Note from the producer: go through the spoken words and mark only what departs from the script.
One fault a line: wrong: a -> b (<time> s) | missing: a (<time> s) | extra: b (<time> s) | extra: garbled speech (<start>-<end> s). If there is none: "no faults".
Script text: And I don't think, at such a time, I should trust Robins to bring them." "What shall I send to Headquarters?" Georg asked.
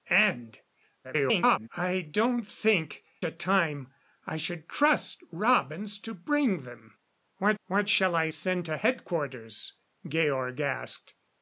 extra: garbled speech (1.0-1.7 s)
missing: at such (3.0 s)
extra: what (7.6 s)